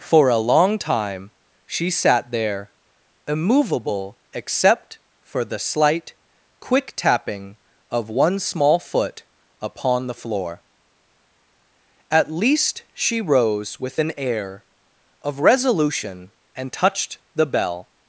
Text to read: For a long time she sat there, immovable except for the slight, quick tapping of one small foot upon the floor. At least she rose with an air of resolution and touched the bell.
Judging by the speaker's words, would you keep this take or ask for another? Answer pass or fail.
pass